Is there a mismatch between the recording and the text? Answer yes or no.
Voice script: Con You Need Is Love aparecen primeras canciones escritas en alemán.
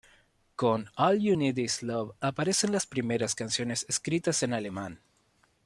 yes